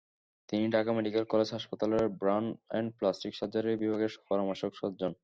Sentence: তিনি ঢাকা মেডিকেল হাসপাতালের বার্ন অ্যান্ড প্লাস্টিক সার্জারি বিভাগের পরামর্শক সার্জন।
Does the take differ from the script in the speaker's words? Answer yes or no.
yes